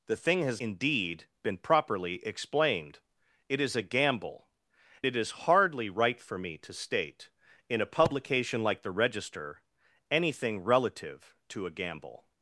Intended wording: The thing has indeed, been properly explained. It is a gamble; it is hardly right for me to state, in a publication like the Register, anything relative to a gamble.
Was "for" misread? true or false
false